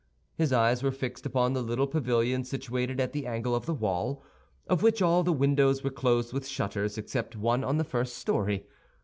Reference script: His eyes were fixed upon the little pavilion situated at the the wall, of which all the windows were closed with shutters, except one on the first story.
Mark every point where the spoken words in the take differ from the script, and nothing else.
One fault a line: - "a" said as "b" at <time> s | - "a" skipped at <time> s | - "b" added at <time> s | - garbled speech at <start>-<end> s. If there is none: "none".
- "angle of" added at 3.3 s